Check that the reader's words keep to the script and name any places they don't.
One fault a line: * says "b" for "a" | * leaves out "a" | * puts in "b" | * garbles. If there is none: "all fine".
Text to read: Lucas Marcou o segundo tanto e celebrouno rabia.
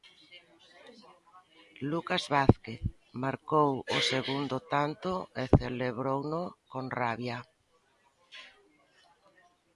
* puts in "Vázquez"
* puts in "con"